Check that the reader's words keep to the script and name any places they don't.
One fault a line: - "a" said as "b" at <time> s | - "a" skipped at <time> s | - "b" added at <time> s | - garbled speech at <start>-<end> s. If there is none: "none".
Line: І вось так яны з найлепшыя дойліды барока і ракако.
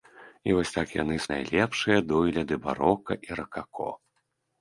none